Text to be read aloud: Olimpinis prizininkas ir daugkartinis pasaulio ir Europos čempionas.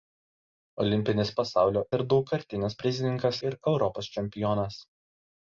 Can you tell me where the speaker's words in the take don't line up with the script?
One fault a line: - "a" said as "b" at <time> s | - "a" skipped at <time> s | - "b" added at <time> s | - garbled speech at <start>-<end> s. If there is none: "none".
- "prizininkas" said as "pasaulio" at 1.4 s
- "pasaulio" said as "prizininkas" at 2.8 s